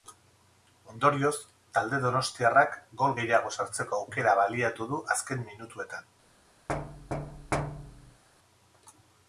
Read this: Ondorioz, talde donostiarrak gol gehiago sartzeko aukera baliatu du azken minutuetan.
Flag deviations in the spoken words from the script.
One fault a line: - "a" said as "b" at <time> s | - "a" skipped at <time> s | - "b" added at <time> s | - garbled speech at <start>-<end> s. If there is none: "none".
none